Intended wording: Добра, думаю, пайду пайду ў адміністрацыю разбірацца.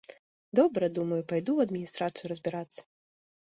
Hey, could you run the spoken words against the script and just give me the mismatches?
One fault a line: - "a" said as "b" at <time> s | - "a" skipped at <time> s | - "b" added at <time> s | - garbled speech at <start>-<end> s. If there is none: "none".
- "пайду" skipped at 1.5 s